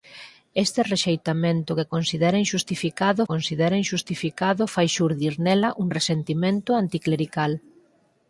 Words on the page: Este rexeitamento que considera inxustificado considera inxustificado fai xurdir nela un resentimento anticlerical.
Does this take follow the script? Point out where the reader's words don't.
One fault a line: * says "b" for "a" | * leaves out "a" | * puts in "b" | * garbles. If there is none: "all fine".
all fine